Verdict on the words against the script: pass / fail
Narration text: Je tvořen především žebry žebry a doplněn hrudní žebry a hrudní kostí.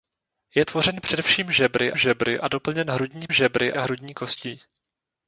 pass